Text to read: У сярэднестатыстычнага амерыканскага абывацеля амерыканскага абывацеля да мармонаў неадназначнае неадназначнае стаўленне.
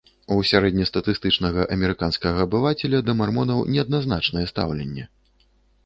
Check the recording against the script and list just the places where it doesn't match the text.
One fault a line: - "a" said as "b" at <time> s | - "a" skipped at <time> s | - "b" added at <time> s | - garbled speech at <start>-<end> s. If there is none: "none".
- "амерыканскага абывацеля" skipped at 3.0 s
- "неадназначнае" skipped at 4.5 s